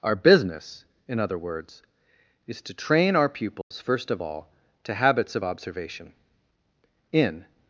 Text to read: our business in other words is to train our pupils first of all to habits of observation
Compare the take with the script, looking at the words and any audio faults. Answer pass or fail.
fail